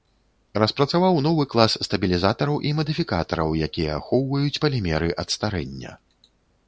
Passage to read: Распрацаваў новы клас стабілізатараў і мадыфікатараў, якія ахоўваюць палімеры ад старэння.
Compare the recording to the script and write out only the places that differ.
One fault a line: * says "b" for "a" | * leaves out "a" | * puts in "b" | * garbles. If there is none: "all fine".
all fine